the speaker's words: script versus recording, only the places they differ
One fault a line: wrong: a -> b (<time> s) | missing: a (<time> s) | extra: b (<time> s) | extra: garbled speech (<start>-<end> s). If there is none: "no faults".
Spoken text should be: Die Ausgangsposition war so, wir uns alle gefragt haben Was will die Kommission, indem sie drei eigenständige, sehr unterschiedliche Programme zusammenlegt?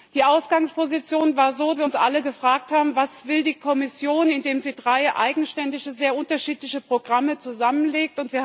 no faults